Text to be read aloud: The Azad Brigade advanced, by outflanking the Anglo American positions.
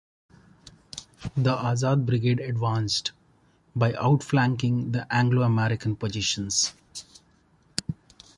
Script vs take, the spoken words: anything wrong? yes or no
no